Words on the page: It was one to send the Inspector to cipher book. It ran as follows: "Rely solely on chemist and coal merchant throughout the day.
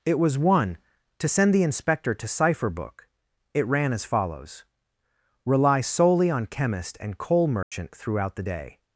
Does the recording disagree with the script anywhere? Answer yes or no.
no